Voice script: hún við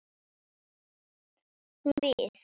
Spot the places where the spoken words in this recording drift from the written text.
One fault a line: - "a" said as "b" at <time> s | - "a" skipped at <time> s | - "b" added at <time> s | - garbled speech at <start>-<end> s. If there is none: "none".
none